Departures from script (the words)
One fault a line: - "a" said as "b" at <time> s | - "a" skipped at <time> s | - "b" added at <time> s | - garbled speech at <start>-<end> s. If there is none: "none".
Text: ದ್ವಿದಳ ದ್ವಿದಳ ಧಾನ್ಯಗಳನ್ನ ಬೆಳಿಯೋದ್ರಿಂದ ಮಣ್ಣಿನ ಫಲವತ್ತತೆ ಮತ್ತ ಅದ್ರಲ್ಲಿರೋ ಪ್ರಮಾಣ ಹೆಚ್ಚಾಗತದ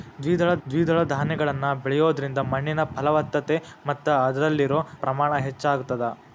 none